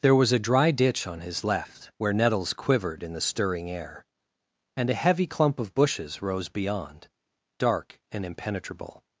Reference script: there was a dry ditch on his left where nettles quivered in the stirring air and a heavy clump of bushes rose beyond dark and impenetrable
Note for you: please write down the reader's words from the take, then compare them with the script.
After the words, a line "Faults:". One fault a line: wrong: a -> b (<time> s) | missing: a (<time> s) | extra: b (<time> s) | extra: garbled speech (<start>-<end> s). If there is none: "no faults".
there was a dry ditch on his left where nettles quivered in the stirring air and a heavy clump of bushes rose beyond dark and impenetrable
Faults:
no faults